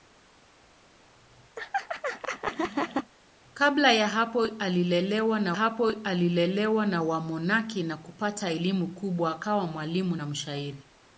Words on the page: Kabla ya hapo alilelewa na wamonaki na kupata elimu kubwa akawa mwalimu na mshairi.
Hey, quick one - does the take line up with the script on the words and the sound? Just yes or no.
no